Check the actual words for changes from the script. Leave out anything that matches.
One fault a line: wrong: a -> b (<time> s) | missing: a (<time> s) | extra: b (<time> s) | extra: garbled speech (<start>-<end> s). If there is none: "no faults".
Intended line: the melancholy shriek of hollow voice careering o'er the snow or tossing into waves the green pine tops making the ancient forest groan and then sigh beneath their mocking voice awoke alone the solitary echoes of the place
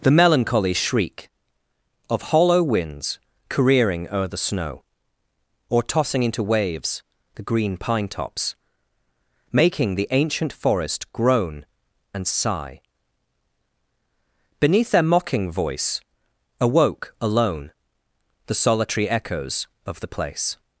wrong: voice -> winds (2.6 s)
missing: then (12.2 s)